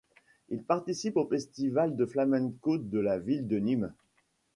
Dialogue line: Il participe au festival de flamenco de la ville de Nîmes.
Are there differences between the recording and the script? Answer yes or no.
no